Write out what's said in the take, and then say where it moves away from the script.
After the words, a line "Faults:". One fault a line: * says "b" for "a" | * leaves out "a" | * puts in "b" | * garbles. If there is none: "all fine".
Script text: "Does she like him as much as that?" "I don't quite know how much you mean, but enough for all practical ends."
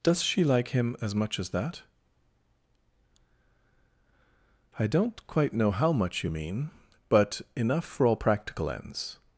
"Does she like him as much as that?" "I don't quite know how much you mean, but enough for all practical ends."
Faults:
all fine